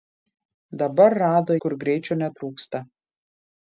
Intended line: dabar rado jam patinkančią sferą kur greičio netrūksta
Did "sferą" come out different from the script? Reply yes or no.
yes